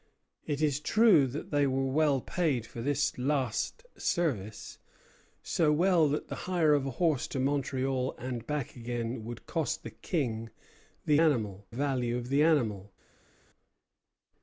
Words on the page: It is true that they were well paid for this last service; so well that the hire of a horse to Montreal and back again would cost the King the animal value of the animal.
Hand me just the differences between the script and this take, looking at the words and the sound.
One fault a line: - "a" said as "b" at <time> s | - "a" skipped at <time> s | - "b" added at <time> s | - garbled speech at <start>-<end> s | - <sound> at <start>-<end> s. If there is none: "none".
none